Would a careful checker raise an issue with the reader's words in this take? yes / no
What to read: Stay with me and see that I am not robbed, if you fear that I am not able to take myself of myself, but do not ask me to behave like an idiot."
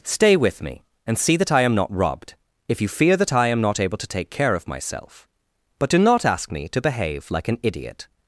yes